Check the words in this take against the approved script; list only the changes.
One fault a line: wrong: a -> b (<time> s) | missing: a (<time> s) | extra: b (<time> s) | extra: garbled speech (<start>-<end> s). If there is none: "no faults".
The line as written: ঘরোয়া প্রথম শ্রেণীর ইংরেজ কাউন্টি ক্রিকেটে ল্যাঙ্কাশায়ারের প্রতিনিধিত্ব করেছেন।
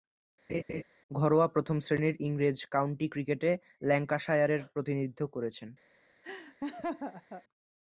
no faults